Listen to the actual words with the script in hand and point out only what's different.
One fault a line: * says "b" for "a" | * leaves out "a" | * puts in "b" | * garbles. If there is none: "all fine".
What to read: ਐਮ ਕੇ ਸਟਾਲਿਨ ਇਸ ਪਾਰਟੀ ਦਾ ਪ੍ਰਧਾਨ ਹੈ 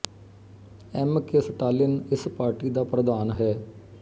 all fine